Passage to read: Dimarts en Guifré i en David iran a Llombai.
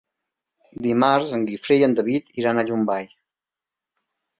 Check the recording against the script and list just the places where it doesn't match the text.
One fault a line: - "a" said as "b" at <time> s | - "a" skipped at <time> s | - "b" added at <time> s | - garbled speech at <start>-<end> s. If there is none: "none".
none